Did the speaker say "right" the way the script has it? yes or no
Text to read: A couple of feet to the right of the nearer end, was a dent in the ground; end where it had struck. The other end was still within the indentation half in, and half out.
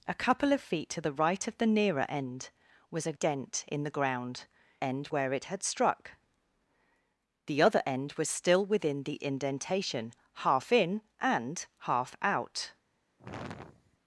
yes